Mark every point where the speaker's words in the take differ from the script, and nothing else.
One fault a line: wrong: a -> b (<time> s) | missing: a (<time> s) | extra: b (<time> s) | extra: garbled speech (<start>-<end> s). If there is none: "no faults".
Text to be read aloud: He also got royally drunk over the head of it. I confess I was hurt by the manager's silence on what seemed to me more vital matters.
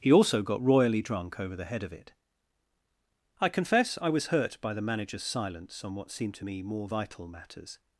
no faults